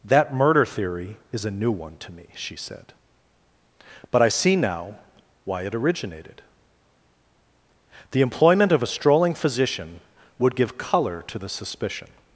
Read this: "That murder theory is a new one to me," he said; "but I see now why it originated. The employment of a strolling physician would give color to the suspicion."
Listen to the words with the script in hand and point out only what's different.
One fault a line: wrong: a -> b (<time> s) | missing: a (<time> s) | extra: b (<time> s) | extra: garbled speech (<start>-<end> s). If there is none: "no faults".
wrong: he -> she (2.4 s)